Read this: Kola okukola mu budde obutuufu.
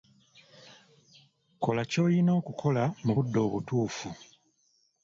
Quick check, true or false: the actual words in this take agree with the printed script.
false